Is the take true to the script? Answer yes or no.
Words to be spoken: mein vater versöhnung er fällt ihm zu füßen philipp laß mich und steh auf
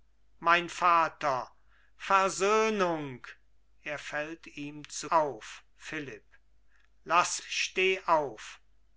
no